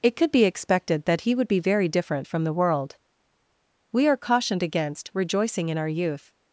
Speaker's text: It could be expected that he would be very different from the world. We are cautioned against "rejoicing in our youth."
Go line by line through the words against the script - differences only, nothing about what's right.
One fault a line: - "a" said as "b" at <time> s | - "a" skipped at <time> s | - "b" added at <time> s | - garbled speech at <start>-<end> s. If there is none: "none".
none